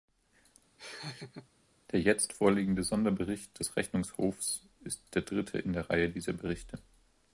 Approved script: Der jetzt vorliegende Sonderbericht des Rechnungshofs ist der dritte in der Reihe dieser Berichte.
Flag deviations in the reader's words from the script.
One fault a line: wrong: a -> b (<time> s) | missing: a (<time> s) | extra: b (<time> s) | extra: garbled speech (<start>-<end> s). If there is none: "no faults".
no faults